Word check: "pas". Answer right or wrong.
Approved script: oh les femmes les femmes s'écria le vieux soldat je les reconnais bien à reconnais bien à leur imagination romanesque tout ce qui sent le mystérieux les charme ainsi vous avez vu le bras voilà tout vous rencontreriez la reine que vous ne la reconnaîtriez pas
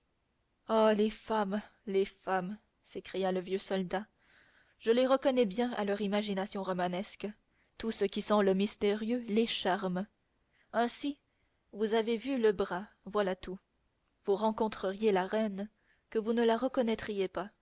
right